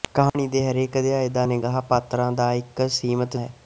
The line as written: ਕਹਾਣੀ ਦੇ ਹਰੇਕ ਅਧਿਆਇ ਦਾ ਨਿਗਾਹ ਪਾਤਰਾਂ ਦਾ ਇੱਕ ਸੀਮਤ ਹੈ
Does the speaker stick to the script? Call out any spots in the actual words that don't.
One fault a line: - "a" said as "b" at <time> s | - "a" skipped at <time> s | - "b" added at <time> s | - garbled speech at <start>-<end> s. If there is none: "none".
none